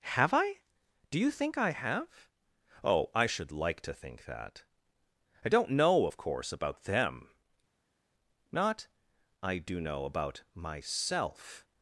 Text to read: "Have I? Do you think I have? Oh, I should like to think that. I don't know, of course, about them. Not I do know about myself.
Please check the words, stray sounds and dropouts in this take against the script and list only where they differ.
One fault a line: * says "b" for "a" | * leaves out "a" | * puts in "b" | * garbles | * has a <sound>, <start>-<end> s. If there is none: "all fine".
all fine